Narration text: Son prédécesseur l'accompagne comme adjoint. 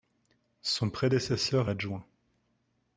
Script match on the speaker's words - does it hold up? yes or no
no